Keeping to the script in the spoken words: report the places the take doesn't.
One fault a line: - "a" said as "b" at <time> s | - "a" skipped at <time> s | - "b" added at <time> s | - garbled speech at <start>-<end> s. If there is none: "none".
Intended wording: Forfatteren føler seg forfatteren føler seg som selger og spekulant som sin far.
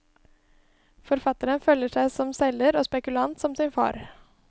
- "forfatteren føler seg" skipped at 2.1 s